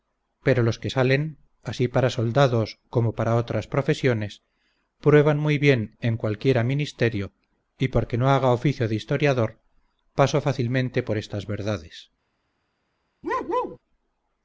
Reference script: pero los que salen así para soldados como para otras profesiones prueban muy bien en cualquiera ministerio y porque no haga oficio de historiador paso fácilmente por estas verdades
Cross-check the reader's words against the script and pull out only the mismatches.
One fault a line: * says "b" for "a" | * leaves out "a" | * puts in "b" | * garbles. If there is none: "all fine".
all fine